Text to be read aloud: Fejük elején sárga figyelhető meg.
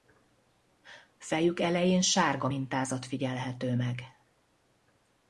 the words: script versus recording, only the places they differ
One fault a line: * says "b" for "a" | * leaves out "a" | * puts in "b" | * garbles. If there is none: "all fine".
* puts in "mintázat"